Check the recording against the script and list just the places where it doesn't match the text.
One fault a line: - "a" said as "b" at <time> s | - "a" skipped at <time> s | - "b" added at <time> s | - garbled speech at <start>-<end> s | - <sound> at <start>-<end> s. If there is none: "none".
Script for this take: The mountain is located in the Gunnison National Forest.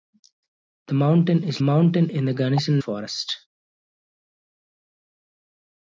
- "located" said as "mountain" at 1.6 s
- "National" skipped at 2.8 s